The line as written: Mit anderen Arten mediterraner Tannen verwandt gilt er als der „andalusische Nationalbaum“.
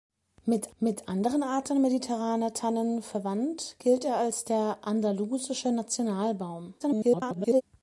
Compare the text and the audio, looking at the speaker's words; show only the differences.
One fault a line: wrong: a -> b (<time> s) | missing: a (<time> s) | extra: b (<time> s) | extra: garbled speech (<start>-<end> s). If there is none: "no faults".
extra: mit (0.8 s)
extra: garbled speech (6.8-7.6 s)